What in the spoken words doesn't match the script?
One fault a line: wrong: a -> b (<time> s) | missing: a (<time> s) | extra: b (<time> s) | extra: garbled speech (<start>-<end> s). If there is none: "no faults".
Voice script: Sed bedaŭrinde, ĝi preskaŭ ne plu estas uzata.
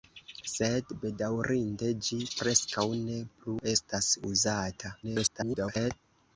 extra: garbled speech (5.0-5.9 s)